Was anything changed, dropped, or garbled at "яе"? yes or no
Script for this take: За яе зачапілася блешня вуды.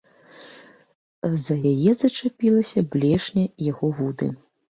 no